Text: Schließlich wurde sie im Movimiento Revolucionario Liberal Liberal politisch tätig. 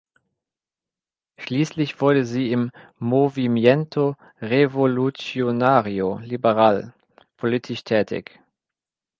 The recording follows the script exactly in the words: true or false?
false